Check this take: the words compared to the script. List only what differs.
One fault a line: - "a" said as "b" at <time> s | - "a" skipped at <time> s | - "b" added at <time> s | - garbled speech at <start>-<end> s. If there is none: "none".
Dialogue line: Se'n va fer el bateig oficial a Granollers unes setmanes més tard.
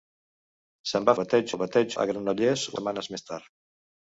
- "fer" said as "bateig" at 1.2 s
- "oficial" skipped at 2.0 s
- "unes" skipped at 2.6 s